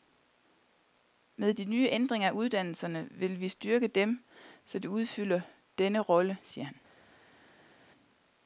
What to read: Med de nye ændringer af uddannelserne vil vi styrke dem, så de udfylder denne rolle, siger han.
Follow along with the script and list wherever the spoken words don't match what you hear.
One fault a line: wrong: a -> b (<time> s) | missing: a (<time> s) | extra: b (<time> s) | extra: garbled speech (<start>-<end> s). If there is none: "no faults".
no faults